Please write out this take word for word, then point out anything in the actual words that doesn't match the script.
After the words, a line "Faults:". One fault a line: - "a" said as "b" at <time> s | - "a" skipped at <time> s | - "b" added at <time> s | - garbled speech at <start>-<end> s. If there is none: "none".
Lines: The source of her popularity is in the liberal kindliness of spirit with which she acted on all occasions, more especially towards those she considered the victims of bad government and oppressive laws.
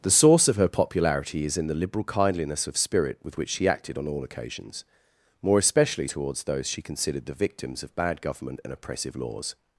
The source of her popularity is in the liberal kindliness of spirit with which she acted on all occasions, more especially towards those she considered the victims of bad government and oppressive laws.
Faults:
none